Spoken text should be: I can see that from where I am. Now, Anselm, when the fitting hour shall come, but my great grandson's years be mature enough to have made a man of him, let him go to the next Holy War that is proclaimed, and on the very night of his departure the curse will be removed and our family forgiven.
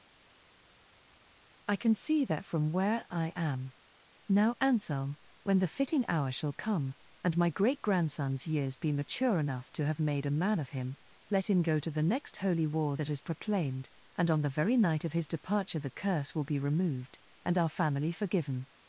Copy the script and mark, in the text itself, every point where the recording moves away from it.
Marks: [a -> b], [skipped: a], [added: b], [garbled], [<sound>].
I can see that from where I am. Now, Anselm, when the fitting hour shall come, [but -> and] my great grandson's years be mature enough to have made a man of him, let him go to the next Holy War that is proclaimed, and on the very night of his departure the curse will be removed and our family forgiven.